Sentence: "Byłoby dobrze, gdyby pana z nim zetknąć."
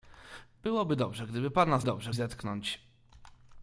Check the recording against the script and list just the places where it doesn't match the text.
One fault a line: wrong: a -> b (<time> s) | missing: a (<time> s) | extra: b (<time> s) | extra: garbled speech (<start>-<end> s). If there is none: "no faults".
wrong: nim -> dobrze (1.8 s)